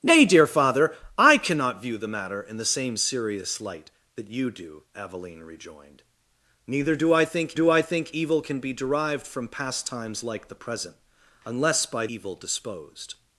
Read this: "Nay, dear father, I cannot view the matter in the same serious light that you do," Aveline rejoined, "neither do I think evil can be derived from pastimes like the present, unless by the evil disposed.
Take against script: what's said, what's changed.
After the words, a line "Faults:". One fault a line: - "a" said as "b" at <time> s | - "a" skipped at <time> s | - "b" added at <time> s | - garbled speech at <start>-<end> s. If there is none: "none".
"Nay, dear father, I cannot view the matter in the same serious light that you do," Aveline rejoined, "neither do I think do I think evil can be derived from pastimes like the present, unless by evil disposed.
Faults:
- "do I think" added at 7.5 s
- "the" skipped at 12.1 s